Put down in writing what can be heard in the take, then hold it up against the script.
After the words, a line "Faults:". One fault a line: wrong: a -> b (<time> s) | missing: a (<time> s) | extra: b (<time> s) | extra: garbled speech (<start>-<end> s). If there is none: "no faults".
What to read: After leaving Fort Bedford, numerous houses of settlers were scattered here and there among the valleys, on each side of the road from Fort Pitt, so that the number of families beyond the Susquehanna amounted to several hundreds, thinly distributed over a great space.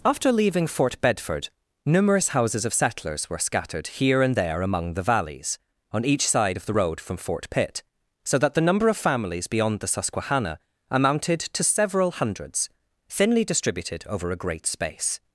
After leaving Fort Bedford, numerous houses of settlers were scattered here and there among the valleys, on each side of the road from Fort Pitt, so that the number of families beyond the Susquehanna amounted to several hundreds, thinly distributed over a great space.
Faults:
no faults